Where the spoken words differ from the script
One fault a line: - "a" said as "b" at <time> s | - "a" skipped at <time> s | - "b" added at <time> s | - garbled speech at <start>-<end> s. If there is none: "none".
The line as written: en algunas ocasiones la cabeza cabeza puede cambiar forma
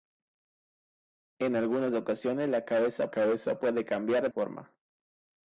none